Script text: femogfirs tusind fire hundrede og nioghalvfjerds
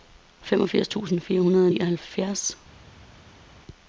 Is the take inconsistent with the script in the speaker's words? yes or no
no